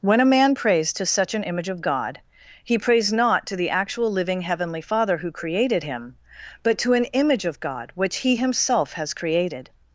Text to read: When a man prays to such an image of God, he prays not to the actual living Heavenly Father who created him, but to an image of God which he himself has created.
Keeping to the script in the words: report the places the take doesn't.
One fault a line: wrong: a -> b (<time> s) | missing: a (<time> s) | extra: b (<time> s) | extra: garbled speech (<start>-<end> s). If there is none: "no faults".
no faults